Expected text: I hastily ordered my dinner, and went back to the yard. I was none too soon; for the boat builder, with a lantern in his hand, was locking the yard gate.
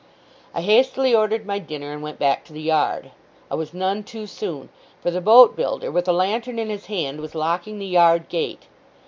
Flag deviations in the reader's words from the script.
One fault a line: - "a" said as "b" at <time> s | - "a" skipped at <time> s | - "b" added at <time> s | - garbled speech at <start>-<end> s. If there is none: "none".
none